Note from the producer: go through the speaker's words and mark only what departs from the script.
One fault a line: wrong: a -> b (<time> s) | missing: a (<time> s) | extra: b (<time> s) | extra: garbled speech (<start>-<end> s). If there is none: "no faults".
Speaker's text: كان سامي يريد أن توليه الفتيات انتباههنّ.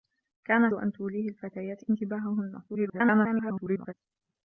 missing: سامي يريد (0.7 s)
extra: garbled speech (2.7-3.9 s)